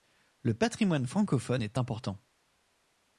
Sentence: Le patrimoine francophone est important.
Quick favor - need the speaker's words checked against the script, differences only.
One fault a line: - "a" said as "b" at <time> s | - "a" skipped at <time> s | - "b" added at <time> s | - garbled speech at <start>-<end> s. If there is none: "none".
none